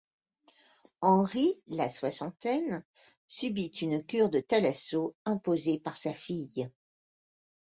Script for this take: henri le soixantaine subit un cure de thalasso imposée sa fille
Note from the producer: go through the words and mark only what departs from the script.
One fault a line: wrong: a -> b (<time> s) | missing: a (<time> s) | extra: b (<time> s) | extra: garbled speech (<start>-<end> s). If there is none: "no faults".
wrong: le -> la (1.7 s)
wrong: un -> une (3.7 s)
extra: par (5.8 s)